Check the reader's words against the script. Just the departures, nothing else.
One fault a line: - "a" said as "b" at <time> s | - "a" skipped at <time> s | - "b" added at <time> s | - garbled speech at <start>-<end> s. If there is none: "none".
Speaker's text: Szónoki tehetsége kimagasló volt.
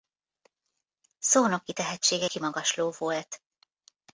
none